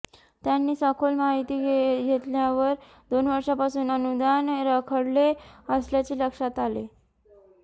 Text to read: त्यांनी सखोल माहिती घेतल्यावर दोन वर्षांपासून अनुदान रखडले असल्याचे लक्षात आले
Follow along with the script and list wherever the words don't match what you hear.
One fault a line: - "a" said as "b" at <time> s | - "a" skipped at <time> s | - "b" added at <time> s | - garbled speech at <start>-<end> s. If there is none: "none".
none